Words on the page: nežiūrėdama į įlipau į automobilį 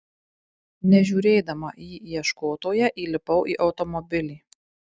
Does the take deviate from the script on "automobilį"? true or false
false